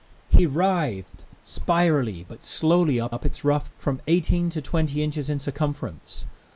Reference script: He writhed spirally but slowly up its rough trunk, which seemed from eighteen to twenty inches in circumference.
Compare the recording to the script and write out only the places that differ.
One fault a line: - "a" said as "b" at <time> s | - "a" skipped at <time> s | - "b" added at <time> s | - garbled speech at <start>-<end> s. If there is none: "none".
- "up" added at 3.1 s
- "trunk which seemed" skipped at 3.7 s